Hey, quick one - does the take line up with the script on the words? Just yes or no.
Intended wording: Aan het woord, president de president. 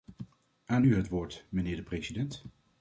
no